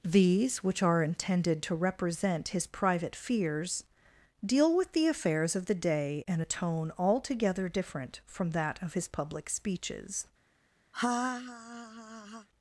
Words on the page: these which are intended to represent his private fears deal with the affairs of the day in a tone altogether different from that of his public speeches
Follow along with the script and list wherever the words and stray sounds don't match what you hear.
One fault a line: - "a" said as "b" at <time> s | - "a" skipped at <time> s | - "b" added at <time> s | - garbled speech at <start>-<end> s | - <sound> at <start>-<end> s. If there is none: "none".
- laugh at 10.9-12.5 s